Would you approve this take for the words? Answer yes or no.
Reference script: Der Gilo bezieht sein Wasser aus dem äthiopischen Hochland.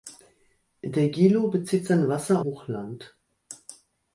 no